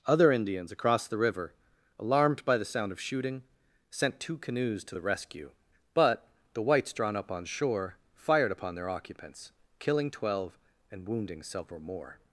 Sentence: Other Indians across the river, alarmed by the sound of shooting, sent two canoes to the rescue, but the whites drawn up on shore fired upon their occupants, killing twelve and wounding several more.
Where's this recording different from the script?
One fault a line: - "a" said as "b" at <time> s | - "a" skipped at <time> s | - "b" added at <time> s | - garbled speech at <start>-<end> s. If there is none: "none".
none